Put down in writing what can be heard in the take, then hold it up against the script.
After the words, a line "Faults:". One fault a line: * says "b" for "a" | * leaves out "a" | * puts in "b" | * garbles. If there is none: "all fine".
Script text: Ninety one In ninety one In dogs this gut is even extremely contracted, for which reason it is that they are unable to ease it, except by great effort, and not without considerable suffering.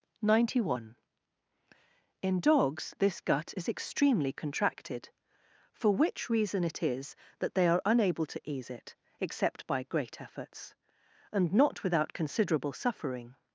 Ninety one In dogs this gut is extremely contracted, for which reason it is that they are unable to ease it, except by great efforts, and not without considerable suffering.
Faults:
* leaves out "ninety one In"
* leaves out "even"
* says "efforts" for "effort"